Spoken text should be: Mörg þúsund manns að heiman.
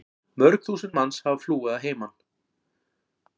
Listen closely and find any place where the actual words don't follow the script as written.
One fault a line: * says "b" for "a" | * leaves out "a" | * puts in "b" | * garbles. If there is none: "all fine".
* puts in "hafa flúið"